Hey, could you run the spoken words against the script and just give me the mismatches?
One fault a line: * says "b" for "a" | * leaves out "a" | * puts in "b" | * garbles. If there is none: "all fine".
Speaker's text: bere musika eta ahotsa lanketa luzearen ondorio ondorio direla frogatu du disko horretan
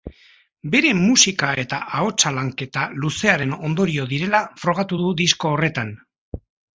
* leaves out "ondorio"